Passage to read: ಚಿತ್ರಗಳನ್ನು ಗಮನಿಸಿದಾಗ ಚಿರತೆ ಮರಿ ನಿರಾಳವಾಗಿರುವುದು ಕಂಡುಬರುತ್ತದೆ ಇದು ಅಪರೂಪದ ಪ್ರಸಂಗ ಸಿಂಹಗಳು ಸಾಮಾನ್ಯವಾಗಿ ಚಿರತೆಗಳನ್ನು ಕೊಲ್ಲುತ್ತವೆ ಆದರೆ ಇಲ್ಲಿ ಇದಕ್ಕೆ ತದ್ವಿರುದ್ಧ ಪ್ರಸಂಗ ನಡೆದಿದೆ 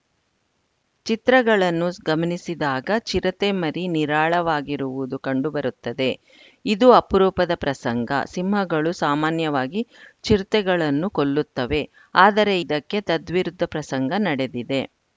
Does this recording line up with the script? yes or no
no